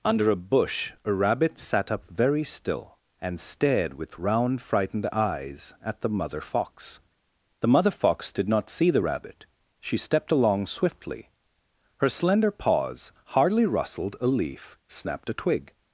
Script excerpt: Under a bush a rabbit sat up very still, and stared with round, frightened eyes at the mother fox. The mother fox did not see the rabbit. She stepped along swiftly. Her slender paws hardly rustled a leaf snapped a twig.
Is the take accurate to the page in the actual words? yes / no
yes